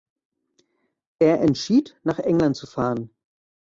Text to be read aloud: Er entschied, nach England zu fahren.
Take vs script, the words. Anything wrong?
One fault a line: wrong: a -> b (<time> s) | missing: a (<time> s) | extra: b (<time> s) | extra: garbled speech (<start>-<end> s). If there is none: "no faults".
no faults